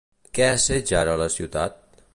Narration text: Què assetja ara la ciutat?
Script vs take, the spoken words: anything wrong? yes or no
no